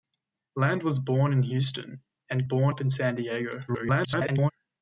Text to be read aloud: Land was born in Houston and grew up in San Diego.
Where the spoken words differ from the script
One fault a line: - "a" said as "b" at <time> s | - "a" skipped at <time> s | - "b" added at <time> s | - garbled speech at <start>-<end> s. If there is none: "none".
- "grew" said as "born" at 2.4 s
- garbled speech at 3.7-4.5 s